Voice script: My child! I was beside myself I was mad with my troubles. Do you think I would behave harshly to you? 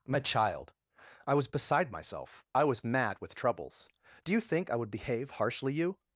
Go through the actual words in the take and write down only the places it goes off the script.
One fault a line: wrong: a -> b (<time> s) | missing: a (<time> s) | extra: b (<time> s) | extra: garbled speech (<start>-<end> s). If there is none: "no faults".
missing: my (3.4 s)
missing: to (5.7 s)